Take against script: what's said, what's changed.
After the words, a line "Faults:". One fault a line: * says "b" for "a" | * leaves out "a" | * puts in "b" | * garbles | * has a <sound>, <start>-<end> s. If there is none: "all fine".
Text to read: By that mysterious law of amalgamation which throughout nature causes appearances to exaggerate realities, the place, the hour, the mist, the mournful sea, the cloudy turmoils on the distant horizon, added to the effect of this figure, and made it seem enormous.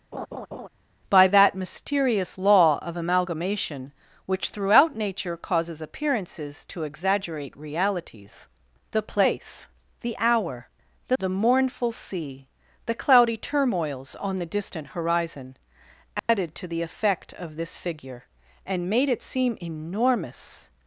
By that mysterious law of amalgamation which throughout nature causes appearances to exaggerate realities, the place, the hour, the the mournful sea, the cloudy turmoils on the distant horizon, added to the effect of this figure, and made it seem enormous.
Faults:
* has a laugh, 0.1-0.7 s
* leaves out "mist"
* has a dropout, 16.2-16.3 s